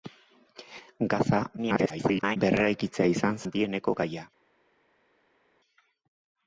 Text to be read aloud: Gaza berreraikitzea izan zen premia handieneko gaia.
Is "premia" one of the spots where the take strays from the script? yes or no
yes